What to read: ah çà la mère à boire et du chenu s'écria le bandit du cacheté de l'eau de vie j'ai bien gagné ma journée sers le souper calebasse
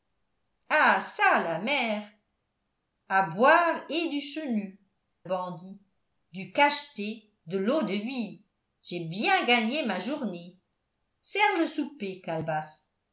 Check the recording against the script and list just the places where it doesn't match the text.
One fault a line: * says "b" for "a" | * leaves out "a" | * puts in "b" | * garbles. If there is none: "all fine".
* leaves out "s'écria le"